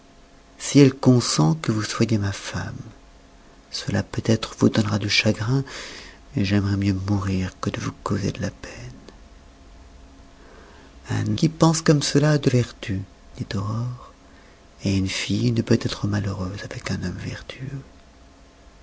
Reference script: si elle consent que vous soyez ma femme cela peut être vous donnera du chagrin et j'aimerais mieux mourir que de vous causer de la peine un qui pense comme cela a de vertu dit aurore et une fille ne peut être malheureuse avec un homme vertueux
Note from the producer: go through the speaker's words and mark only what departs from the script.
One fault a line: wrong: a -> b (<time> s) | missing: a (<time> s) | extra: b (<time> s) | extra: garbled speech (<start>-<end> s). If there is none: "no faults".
no faults